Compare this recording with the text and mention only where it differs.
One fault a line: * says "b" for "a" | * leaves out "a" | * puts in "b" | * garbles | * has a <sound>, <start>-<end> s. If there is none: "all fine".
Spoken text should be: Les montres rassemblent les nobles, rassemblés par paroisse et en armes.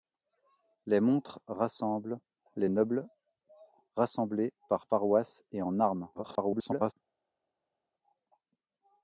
* garbles